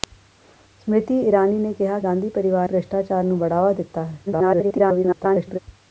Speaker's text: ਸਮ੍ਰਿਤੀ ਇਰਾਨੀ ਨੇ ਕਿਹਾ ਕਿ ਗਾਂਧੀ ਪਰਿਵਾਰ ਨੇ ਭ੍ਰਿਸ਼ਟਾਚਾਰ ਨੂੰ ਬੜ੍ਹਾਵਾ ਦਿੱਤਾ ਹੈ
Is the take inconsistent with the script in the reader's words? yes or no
yes